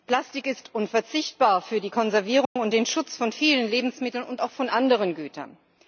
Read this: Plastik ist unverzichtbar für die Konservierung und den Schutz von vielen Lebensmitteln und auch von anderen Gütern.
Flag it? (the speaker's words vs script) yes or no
no